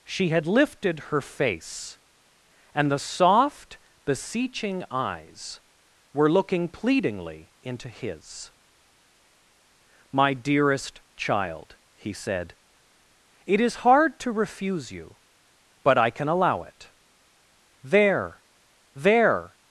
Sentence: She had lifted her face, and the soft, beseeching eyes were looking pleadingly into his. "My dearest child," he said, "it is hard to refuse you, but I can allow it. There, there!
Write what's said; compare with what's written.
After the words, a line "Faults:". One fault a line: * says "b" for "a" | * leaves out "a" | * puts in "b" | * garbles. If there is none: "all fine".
She had lifted her face, and the soft, beseeching eyes were looking pleadingly into his. "My dearest child," he said, "it is hard to refuse you, but I can allow it. There, there!
Faults:
all fine